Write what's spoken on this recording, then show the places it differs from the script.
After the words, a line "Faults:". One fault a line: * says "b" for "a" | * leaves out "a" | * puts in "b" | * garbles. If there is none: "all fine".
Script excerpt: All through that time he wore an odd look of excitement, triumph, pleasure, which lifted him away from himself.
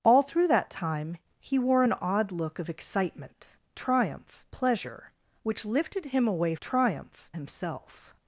All through that time he wore an odd look of excitement, triumph, pleasure, which lifted him away triumph himself.
Faults:
* says "triumph" for "from"